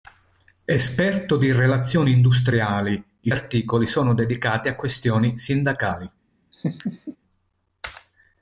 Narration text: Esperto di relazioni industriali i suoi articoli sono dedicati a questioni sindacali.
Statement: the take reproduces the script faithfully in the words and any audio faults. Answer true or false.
false